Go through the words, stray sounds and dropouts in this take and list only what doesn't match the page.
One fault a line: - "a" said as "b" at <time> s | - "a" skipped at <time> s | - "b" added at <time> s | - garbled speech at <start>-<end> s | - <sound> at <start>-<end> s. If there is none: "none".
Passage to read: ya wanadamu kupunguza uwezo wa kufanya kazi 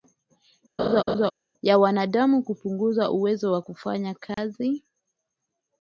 - laugh at 0.8-1.3 s
- dropout at 4.3-4.4 s